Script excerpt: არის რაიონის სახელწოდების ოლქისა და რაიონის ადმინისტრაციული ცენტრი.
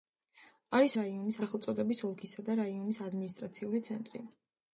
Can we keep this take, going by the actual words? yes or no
yes